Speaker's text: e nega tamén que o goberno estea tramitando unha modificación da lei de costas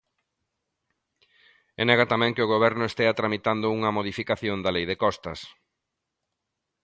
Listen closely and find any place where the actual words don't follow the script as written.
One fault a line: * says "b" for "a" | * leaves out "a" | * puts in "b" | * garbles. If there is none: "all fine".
all fine